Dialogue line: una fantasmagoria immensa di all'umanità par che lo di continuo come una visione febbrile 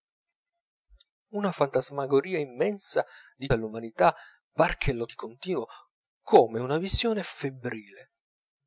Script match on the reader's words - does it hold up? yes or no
yes